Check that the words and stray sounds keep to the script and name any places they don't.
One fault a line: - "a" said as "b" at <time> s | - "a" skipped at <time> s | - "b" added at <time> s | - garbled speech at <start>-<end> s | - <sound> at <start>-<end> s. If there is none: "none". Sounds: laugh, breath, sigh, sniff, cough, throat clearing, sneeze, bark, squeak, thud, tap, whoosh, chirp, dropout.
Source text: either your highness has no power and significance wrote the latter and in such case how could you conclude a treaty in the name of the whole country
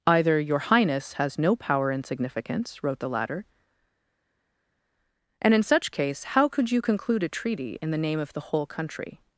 none